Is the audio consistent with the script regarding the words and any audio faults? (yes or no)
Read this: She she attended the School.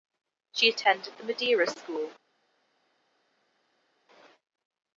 no